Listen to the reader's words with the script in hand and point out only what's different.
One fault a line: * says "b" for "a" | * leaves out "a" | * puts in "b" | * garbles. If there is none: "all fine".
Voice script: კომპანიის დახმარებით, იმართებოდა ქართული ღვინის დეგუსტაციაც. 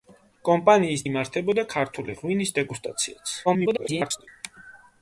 * leaves out "დახმარებით"
* garbles